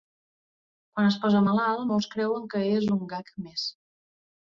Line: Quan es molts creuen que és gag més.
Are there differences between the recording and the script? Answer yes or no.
yes